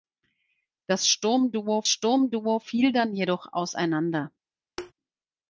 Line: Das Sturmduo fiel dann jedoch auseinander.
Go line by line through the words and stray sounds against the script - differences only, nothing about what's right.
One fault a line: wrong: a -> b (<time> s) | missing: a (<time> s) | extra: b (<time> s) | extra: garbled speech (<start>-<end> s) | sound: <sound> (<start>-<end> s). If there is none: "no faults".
extra: Sturmduo (1.9 s)
sound: thud (4.8-4.9 s)